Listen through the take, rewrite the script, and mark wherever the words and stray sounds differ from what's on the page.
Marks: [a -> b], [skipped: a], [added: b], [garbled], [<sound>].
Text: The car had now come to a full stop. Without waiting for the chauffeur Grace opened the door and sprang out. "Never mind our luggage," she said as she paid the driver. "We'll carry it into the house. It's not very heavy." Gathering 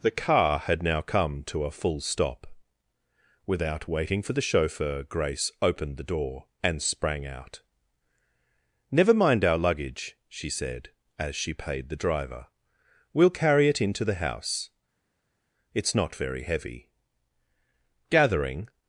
The car had now come to a full stop. Without waiting for the chauffeur Grace opened the door and sprang out. "Never mind our luggage," she said as she paid the driver. "We'll carry it into the house. It's not very heavy." Gathering